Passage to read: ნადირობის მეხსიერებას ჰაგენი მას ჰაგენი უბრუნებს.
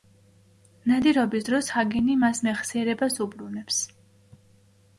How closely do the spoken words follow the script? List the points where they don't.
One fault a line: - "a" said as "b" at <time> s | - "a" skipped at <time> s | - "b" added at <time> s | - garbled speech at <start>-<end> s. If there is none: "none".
- "მეხსიერებას" said as "დროს" at 1.5 s
- "ჰაგენი" said as "მეხსიერებას" at 2.5 s